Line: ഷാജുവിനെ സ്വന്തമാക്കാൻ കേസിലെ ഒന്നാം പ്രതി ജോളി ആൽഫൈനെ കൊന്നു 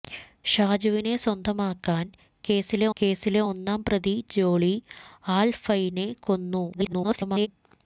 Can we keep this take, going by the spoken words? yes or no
no